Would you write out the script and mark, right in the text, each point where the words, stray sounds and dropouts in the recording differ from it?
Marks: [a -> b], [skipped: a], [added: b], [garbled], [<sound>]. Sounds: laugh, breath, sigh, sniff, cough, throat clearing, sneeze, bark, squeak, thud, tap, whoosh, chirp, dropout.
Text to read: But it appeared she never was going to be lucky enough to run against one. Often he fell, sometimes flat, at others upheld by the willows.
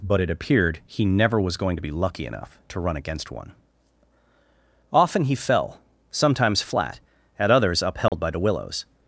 But it appeared [she -> he] never was going to be lucky enough to run against one. Often he fell, sometimes flat, at others upheld [dropout] by the willows.